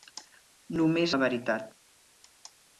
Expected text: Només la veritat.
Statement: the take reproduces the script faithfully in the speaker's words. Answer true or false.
true